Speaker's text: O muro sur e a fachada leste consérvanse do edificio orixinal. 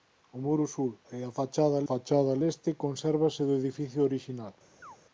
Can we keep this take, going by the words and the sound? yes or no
no